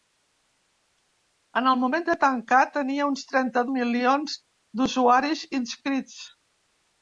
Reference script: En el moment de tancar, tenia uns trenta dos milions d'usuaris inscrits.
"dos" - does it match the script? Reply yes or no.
no